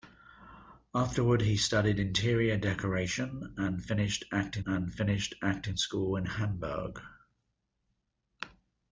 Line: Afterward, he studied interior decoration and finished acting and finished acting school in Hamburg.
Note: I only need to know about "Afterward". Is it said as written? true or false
true